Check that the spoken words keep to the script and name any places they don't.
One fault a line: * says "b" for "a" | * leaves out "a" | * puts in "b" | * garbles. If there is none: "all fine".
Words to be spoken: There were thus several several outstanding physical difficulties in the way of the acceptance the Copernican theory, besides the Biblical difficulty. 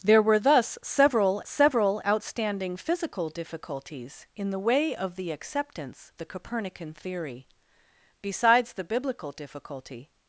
all fine